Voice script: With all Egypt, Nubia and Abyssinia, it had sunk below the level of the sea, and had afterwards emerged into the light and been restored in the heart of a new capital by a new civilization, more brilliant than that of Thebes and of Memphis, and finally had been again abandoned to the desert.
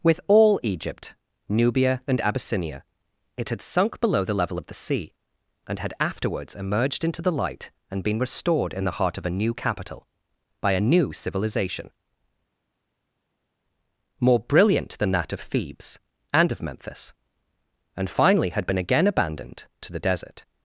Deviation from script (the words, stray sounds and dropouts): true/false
false